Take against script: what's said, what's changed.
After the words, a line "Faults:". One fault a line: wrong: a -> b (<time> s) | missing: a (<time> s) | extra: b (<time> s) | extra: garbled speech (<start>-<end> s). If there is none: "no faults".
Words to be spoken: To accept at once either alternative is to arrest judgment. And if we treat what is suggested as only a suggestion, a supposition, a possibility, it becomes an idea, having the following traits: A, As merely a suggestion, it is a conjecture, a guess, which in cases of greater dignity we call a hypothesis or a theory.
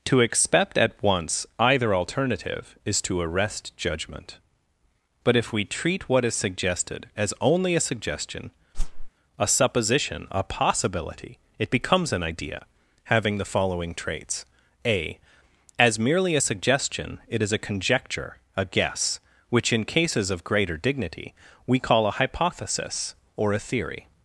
To accept at once either alternative is to arrest judgment. But if we treat what is suggested as only a suggestion, a supposition, a possibility, it becomes an idea, having the following traits: A, As merely a suggestion, it is a conjecture, a guess, which in cases of greater dignity we call a hypothesis or a theory.
Faults:
wrong: And -> But (5.2 s)